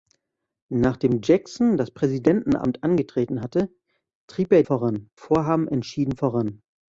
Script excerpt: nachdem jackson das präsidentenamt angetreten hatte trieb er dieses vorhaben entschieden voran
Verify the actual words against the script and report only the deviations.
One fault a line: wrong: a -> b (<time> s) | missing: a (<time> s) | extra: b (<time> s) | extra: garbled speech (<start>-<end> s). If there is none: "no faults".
wrong: dieses -> voran (4.6 s)